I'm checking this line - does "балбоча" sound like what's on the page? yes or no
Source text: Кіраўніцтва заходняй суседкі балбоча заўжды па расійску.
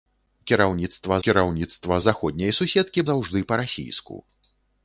no